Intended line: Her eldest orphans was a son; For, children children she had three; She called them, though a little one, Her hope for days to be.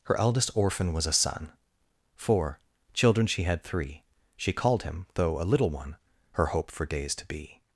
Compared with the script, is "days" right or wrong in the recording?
right